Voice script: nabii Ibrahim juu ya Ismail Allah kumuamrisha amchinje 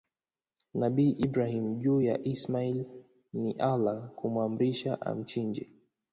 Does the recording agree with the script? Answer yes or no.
no